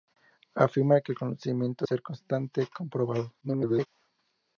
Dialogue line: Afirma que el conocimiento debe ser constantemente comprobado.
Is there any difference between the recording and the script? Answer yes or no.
yes